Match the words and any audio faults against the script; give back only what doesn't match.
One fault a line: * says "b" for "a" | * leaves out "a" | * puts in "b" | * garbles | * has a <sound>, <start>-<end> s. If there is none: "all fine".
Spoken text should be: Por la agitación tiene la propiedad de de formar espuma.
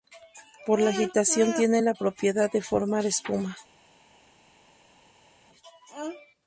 * leaves out "de"